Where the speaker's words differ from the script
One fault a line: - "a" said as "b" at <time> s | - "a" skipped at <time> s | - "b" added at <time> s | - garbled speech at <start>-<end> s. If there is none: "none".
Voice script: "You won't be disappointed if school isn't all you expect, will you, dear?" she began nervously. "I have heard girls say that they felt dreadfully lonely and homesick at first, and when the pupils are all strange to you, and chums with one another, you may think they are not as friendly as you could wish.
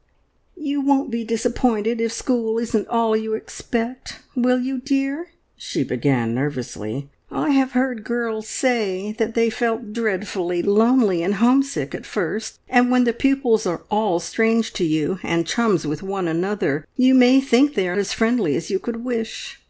- "not" skipped at 18.0 s